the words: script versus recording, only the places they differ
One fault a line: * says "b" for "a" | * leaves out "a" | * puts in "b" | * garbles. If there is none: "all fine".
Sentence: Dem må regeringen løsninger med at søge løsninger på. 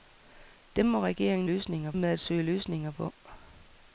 all fine